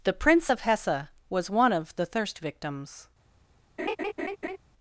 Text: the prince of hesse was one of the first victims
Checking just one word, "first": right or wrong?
wrong